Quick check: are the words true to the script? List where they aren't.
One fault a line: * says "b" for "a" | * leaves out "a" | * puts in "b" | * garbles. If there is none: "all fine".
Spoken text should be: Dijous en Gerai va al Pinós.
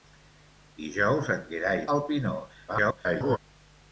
* leaves out "va"
* garbles